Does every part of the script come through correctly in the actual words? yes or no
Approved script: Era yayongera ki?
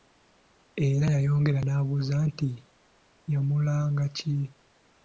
no